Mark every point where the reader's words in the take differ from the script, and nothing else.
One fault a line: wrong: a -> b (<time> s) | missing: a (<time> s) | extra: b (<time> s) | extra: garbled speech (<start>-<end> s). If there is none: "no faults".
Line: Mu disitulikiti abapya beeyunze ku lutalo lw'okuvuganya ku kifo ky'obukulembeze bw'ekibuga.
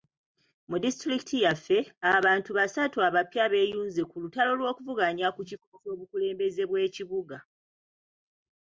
extra: yaffe abantu basatu (1.4 s)